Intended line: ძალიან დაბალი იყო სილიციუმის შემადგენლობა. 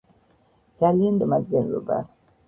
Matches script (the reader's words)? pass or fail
fail